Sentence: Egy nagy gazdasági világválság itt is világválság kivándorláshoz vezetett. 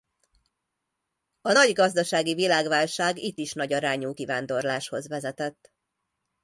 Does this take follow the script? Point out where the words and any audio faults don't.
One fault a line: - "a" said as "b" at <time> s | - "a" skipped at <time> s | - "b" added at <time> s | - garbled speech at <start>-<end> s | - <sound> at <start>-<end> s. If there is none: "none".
- "Egy" said as "A" at 1.4 s
- "világválság" said as "nagyarányú" at 3.5 s